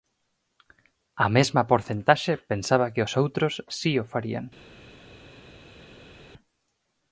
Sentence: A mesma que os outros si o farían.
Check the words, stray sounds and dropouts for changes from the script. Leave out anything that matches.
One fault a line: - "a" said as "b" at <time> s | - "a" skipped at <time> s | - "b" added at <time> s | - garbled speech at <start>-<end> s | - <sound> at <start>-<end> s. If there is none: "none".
- "porcentaxe pensaba" added at 1.7 s